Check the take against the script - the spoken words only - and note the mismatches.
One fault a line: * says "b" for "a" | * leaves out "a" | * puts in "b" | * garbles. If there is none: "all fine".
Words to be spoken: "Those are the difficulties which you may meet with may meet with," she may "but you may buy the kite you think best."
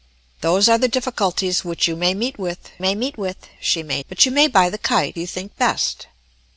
all fine